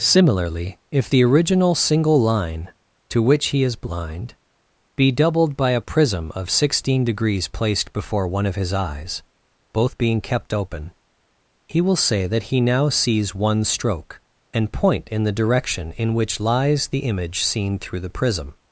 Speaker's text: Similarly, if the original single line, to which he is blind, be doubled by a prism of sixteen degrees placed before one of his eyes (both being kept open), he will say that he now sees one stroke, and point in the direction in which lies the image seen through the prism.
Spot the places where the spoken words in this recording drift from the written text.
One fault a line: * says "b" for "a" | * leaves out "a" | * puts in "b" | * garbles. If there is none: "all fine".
all fine